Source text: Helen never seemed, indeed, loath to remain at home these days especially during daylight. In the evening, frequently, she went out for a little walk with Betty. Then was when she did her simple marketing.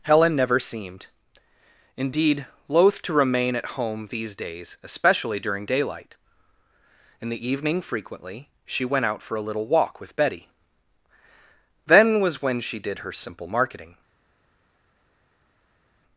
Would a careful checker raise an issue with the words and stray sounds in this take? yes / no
no